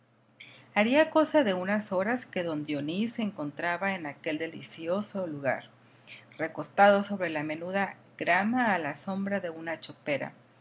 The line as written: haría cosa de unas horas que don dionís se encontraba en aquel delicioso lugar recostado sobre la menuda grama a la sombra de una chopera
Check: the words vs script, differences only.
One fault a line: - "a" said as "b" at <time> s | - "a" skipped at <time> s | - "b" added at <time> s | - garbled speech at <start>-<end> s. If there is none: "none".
none